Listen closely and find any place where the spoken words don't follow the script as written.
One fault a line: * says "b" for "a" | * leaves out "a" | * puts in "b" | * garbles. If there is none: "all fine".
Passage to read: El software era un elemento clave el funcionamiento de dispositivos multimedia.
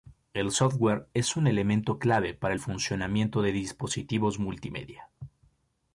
* says "es" for "era"
* puts in "para"